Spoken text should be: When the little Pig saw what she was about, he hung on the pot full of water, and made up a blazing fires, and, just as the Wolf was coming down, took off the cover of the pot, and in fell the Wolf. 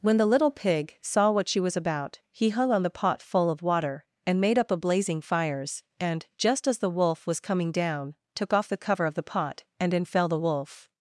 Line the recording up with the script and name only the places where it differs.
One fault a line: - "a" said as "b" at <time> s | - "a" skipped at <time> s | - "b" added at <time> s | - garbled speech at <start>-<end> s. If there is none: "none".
none